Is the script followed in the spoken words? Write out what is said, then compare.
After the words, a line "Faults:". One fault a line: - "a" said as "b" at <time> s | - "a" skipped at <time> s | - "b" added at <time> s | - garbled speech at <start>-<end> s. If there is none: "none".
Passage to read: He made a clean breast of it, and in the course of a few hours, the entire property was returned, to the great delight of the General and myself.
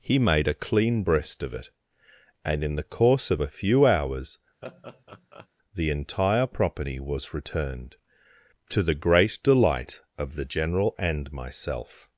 He made a clean breast of it, and in the course of a few hours, the entire property was returned, to the great delight of the General and myself.
Faults:
none